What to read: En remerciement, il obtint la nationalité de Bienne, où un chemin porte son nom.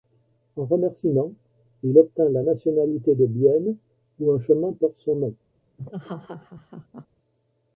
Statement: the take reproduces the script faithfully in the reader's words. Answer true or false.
true